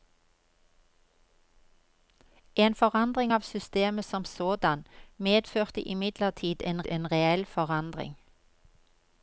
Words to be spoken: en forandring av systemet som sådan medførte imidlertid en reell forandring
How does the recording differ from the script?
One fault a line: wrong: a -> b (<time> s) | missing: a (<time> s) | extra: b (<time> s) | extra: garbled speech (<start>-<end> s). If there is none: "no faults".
extra: en (6.9 s)